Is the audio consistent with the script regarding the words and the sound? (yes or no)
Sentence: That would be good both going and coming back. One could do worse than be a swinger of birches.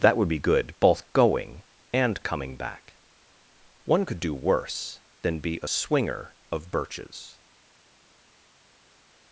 yes